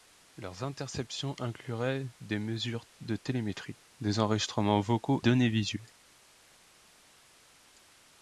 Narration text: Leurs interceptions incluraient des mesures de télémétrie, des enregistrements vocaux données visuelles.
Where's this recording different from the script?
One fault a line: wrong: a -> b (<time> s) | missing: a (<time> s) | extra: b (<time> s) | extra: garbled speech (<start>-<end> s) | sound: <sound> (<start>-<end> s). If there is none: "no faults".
no faults